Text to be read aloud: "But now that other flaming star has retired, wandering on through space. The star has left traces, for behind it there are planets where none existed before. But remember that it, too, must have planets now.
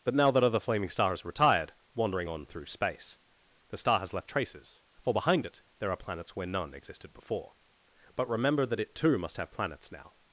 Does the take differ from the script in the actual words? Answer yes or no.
no